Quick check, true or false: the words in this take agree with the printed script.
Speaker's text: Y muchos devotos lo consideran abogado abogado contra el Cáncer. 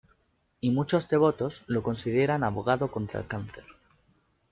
false